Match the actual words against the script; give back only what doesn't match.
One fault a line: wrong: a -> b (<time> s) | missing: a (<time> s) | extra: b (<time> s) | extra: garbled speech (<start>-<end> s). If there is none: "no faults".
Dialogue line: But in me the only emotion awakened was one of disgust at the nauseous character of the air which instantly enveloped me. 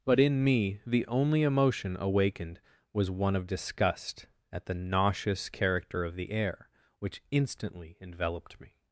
no faults